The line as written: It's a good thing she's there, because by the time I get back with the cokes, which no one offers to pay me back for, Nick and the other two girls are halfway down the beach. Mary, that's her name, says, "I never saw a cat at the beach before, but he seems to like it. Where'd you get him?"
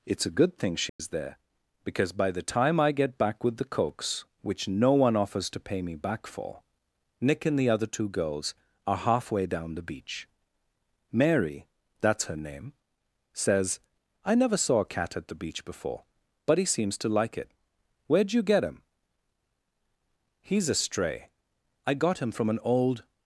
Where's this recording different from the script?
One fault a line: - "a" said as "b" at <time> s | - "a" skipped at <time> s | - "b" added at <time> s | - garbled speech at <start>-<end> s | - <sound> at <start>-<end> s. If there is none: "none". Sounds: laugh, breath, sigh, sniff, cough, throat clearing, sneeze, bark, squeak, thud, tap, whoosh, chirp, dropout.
- dropout at 0.9-1.0 s
- "He's a stray I got him from an old" added at 20.4 s